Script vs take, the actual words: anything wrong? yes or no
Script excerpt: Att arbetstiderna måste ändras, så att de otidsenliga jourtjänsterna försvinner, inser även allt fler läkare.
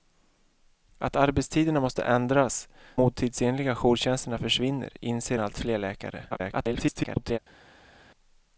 yes